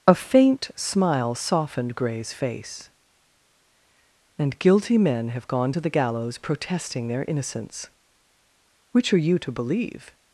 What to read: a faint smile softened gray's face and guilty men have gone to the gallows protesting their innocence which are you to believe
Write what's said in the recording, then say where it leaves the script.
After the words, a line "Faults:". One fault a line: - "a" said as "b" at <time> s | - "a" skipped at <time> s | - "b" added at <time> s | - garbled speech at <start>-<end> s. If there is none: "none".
a faint smile softened gray's face and guilty men have gone to the gallows protesting their innocence which are you to believe
Faults:
none